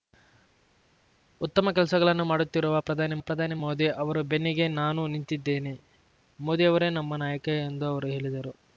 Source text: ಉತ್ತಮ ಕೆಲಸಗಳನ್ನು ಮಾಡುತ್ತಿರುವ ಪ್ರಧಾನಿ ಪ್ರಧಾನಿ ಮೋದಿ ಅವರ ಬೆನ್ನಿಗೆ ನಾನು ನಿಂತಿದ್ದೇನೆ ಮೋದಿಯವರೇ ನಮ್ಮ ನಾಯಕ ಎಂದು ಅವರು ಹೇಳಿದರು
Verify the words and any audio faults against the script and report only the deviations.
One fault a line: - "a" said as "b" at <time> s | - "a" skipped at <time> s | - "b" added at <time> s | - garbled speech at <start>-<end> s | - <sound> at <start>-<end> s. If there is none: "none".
none